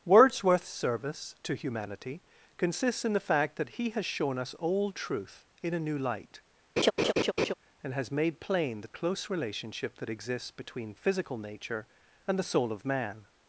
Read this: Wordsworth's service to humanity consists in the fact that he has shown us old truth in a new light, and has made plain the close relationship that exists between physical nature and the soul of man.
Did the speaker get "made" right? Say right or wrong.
right